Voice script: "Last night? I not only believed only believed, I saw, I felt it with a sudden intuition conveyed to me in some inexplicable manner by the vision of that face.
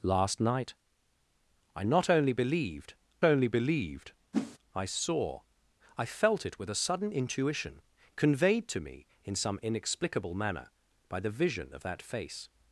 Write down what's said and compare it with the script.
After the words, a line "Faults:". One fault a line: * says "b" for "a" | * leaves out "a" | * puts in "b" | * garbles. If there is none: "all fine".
"Last night? I not only believed only believed, I saw, I felt it with a sudden intuition conveyed to me in some inexplicable manner by the vision of that face.
Faults:
all fine